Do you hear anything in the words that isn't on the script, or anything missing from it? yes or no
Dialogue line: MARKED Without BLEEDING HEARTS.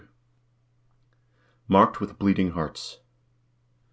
yes